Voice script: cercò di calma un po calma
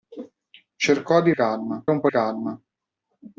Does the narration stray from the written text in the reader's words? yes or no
no